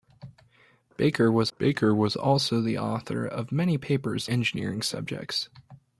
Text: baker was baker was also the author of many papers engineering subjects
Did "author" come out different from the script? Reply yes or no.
no